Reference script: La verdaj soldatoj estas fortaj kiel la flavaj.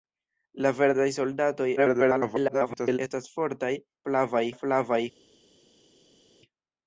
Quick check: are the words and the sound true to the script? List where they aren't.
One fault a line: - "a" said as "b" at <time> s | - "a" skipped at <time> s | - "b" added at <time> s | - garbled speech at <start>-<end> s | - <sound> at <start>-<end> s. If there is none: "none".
- garbled speech at 1.8-3.0 s
- "kiel" said as "flavaj" at 4.1 s